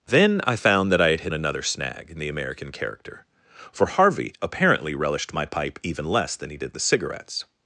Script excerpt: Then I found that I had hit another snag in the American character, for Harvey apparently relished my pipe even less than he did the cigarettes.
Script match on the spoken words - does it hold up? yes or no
yes